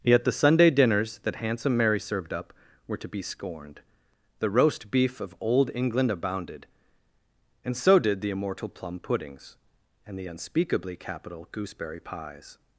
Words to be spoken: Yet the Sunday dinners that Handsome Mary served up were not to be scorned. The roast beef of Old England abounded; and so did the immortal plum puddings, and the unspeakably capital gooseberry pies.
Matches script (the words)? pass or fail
fail